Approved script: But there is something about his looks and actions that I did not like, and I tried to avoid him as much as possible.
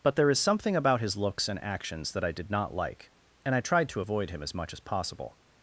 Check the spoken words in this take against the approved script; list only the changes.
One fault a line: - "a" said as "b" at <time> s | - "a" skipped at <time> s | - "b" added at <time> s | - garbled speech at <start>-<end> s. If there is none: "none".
none